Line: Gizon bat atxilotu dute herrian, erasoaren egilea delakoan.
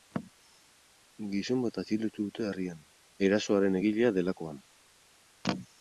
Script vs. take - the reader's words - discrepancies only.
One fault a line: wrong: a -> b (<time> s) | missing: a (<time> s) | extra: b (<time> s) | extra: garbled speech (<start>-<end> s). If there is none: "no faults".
no faults